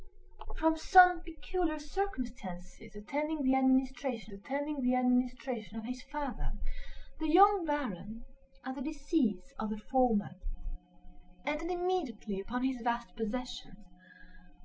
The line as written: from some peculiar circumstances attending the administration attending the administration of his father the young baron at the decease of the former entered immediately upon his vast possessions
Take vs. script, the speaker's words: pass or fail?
pass